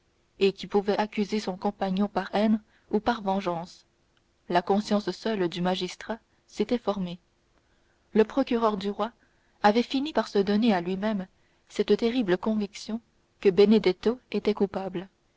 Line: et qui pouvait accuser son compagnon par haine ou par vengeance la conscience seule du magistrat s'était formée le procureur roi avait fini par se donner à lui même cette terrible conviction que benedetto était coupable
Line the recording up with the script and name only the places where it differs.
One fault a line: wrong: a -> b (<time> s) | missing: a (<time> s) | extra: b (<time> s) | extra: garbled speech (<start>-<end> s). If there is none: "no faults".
extra: du (8.8 s)